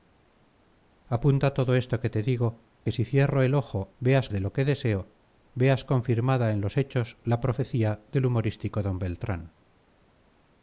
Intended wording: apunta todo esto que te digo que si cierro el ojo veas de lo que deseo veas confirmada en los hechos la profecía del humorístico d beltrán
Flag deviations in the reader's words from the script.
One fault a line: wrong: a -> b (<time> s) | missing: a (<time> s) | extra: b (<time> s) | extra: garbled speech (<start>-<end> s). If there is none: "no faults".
no faults